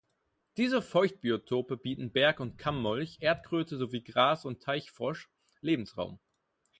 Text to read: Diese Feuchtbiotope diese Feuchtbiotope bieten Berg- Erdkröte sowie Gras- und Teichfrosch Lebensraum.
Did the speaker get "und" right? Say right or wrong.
right